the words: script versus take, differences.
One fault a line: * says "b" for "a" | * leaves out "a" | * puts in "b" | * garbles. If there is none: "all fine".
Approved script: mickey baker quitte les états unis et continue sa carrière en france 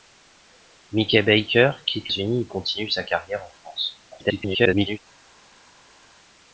* leaves out "les états"
* garbles